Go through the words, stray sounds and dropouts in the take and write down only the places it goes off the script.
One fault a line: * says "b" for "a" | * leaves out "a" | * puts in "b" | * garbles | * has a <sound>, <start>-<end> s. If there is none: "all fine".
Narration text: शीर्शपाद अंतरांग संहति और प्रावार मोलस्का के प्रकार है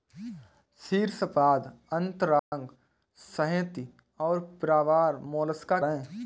* has a dropout, 2.4-2.5 s
* leaves out "के प्रकार"